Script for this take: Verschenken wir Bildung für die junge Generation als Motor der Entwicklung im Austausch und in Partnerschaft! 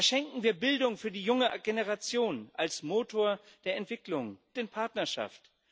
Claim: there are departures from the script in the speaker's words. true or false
true